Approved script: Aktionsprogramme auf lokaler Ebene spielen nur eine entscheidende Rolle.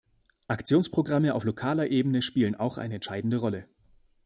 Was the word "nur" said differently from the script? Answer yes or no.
yes